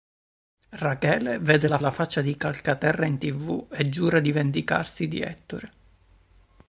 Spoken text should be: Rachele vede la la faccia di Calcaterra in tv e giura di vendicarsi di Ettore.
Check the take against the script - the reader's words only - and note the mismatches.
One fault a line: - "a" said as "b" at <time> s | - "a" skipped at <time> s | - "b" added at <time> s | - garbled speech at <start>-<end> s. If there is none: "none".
none